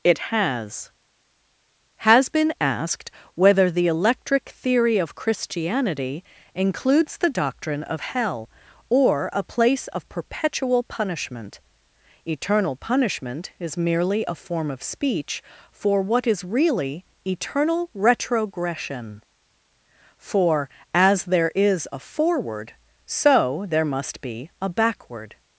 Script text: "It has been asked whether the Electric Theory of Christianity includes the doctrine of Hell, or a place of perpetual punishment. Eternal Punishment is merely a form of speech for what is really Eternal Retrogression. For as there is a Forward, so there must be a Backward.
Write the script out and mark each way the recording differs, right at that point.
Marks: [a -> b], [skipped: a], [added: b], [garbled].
"It has [added: has] been asked whether the Electric Theory of Christianity includes the doctrine of Hell, or a place of perpetual punishment. Eternal Punishment is merely a form of speech for what is really Eternal Retrogression. For as there is a Forward, so there must be a Backward.